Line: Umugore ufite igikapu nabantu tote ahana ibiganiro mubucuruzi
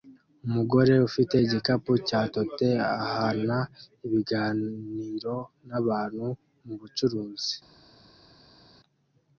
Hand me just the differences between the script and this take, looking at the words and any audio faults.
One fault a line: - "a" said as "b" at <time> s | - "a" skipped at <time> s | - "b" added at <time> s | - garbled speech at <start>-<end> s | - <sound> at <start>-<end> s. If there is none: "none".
- "nabantu" said as "cya" at 2.1 s
- "nabantu" added at 5.7 s